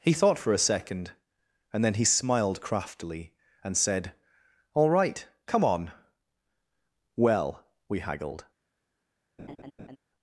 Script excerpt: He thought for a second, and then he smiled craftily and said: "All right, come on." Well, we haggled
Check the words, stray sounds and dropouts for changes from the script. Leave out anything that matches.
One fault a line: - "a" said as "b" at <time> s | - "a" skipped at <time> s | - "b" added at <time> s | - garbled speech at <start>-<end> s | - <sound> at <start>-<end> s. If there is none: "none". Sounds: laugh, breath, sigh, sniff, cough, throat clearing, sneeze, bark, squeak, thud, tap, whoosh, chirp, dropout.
- laugh at 9.4-10.0 s